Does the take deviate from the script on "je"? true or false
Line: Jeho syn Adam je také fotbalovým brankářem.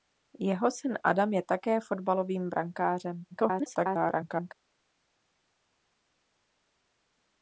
false